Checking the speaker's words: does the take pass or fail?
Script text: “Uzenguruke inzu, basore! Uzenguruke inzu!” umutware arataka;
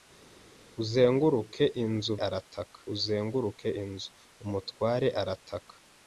fail